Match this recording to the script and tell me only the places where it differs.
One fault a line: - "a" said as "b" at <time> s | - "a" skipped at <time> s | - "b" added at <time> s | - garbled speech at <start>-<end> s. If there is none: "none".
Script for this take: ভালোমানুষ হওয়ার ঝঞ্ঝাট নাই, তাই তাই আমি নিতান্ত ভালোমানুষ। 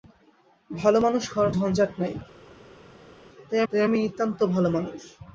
none